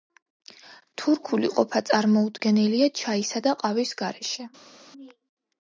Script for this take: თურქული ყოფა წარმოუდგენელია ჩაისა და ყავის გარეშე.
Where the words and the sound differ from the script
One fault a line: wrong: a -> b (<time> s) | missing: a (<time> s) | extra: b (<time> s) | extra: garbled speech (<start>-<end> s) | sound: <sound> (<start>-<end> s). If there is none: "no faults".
no faults